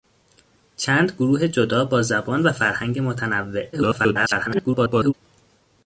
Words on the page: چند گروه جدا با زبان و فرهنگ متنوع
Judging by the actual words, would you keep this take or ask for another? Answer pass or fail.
fail